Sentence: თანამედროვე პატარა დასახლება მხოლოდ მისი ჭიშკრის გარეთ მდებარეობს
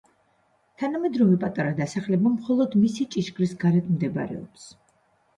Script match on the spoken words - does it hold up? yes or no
yes